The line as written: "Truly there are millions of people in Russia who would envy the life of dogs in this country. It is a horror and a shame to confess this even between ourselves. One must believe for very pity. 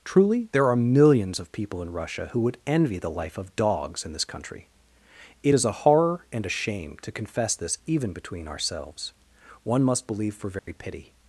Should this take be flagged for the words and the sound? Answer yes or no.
yes